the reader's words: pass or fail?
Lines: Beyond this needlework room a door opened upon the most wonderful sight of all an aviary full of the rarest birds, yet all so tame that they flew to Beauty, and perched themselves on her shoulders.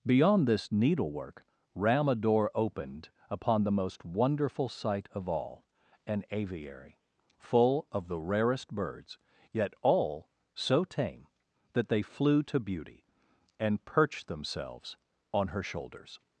fail